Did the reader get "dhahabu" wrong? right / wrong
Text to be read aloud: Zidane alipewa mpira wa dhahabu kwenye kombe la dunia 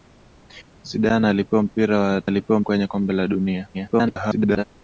wrong